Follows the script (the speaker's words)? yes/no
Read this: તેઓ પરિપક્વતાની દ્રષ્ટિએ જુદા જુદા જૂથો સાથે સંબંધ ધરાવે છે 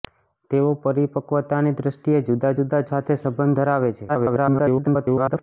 no